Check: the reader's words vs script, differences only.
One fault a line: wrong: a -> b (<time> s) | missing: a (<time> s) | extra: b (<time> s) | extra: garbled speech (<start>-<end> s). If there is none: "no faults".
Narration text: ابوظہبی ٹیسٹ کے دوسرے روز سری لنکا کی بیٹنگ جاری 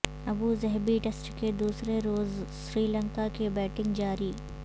no faults